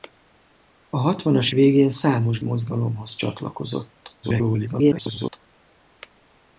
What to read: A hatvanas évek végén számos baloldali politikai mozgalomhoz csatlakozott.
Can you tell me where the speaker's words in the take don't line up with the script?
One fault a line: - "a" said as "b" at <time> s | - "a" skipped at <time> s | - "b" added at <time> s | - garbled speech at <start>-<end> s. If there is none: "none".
- "évek" skipped at 1.5 s
- "baloldali politikai" skipped at 2.4 s
- garbled speech at 4.2-5.4 s